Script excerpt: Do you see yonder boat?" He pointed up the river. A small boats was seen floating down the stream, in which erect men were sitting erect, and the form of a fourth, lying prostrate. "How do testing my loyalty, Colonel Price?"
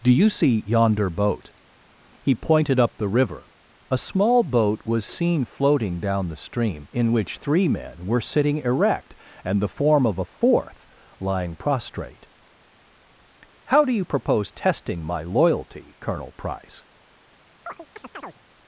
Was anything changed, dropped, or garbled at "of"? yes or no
no